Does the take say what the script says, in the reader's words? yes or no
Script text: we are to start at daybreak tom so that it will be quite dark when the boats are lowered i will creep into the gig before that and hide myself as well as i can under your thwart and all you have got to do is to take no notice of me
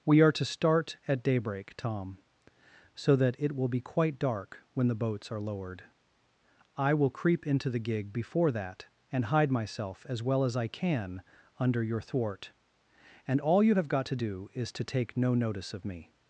yes